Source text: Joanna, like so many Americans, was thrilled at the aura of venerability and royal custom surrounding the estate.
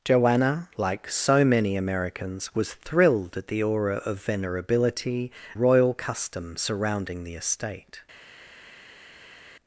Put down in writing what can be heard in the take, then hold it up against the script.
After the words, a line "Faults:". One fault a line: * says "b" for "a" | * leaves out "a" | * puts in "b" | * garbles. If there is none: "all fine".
Joanna, like so many Americans, was thrilled at the aura of venerability royal custom surrounding the estate.
Faults:
* leaves out "and"